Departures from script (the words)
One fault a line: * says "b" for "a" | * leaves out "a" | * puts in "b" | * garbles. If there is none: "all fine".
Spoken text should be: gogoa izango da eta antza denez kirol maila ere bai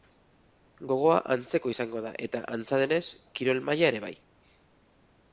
* puts in "antzeko"